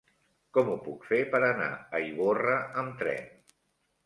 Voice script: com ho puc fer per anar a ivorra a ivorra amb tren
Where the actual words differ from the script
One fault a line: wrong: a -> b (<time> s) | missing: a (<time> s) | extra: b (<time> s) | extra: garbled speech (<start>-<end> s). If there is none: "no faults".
missing: a ivorra (2.6 s)